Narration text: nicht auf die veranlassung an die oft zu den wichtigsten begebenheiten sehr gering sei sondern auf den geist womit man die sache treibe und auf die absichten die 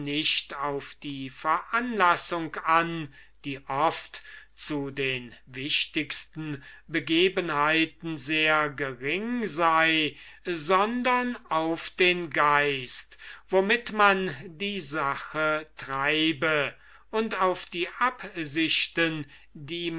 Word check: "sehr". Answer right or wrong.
right